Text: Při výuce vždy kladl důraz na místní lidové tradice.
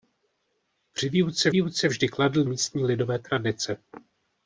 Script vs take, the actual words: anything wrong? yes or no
yes